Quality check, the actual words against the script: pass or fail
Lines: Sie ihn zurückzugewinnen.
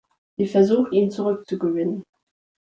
fail